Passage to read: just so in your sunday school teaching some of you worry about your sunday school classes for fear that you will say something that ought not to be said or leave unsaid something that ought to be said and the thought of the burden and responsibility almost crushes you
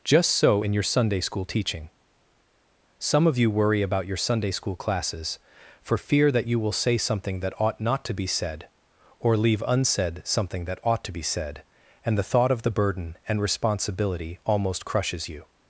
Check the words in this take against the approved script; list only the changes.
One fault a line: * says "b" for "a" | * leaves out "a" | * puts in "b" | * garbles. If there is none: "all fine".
all fine